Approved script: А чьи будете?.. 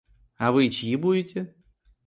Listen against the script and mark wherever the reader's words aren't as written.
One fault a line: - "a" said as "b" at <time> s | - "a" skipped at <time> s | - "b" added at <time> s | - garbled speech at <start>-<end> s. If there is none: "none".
- "вы" added at 0.5 s